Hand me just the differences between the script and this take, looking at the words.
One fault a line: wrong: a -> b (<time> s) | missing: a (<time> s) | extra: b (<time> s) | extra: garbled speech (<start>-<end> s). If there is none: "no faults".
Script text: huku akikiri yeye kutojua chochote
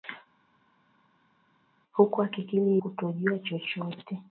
missing: yeye (2.8 s)